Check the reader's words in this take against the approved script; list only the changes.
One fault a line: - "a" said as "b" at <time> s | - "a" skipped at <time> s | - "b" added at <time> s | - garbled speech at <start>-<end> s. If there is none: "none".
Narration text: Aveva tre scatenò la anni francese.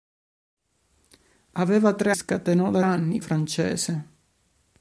none